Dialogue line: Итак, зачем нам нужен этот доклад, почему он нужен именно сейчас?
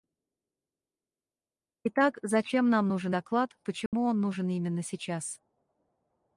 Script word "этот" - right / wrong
wrong